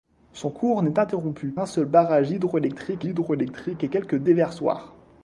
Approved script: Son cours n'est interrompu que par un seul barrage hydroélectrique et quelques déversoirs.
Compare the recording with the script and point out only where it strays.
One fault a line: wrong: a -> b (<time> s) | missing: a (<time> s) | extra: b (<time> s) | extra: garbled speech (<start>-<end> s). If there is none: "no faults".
missing: que par (1.5 s)
extra: hydroélectrique (3.1 s)